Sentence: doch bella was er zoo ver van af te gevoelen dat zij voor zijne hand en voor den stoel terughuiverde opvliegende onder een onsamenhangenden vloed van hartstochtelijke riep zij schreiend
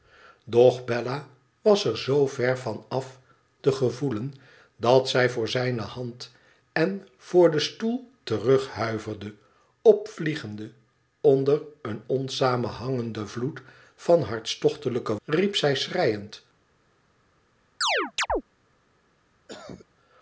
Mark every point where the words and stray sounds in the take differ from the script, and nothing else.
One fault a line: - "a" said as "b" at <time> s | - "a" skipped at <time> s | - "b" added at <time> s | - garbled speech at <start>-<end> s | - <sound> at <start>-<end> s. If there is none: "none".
- chirp at 17.8-18.4 s
- cough at 19.5-19.9 s